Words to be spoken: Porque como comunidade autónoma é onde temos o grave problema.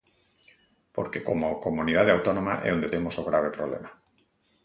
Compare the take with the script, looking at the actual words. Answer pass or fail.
pass